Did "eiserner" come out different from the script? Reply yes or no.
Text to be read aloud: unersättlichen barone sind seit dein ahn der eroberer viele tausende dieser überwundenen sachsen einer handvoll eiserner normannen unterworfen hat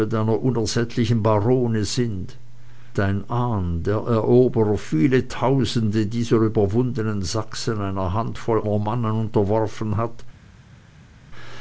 yes